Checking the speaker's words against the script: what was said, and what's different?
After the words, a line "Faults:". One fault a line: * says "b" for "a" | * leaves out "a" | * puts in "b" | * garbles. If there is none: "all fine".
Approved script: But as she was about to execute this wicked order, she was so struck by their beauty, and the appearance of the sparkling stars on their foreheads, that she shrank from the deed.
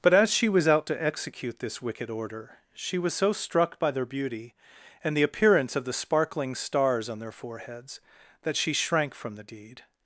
But as she was out to execute this wicked order, she was so struck by their beauty, and the appearance of the sparkling stars on their foreheads, that she shrank from the deed.
Faults:
* says "out" for "about"